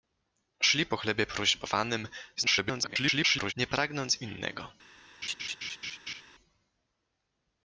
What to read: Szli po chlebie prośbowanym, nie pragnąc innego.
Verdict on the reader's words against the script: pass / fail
fail